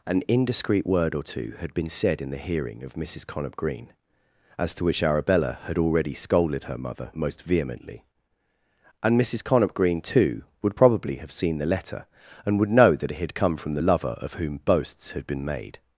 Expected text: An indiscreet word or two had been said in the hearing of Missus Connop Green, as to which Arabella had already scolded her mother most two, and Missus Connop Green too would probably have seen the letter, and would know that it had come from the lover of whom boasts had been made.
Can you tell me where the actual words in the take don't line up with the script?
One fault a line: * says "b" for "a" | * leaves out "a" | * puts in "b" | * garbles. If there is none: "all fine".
* says "vehemently" for "two"